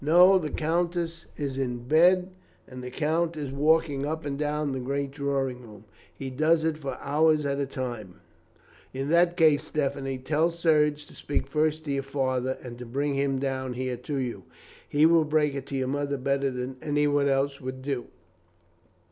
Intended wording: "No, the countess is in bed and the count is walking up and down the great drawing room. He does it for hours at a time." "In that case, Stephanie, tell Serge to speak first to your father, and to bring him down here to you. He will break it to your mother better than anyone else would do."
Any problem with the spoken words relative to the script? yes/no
no